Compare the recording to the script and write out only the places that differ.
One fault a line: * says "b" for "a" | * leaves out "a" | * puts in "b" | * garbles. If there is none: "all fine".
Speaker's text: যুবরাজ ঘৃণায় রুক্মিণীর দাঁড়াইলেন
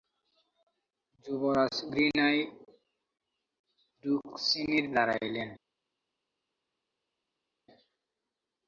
all fine